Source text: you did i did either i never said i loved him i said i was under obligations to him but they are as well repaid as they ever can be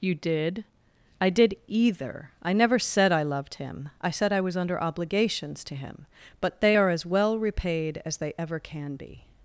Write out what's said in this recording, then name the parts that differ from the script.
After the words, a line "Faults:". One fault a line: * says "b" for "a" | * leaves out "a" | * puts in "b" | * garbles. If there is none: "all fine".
you did i did either i never said i loved him i said i was under obligations to him but they are as well repaid as they ever can be
Faults:
all fine